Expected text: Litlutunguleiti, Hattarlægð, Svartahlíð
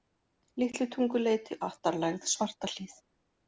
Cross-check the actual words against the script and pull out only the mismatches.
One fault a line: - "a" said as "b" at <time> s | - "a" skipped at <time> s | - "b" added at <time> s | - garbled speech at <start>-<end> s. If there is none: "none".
none